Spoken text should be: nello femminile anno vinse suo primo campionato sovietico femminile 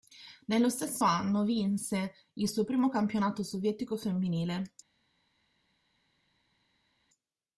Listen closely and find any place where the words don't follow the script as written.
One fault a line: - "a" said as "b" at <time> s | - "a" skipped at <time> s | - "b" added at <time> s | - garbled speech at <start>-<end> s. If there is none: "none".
- "femminile" said as "stesso" at 0.7 s
- "il" added at 2.3 s